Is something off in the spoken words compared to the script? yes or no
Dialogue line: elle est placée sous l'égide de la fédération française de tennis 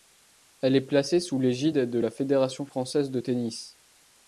no